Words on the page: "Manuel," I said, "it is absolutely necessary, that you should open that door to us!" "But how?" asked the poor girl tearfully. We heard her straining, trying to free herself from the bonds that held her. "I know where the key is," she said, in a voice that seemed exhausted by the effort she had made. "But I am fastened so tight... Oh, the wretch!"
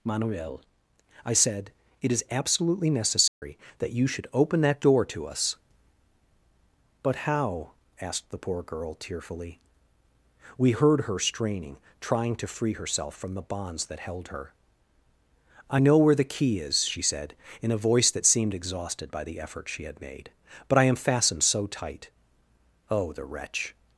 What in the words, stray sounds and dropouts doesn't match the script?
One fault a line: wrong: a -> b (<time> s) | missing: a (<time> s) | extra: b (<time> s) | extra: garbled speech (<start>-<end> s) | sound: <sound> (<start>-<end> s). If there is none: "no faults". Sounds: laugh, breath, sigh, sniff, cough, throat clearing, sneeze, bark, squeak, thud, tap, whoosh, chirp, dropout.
sound: dropout (3.3-3.4 s)